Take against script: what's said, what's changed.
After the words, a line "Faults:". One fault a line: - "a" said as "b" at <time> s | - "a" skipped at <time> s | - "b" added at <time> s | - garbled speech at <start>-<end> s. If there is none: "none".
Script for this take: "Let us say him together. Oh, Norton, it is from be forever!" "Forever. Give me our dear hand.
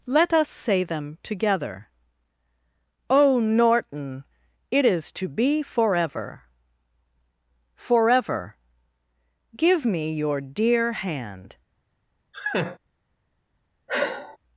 "Let us say them together. Oh, Norton, it is to be forever!" "Forever. Give me your dear hand.
Faults:
- "him" said as "them" at 0.8 s
- "from" said as "to" at 5.1 s
- "our" said as "your" at 10.1 s